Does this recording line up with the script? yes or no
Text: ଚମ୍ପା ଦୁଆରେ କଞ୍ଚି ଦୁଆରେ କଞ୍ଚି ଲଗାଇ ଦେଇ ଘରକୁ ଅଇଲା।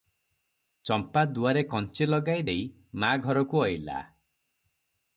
no